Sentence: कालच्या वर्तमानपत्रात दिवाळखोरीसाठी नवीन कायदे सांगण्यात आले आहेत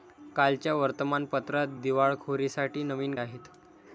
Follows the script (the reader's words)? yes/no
no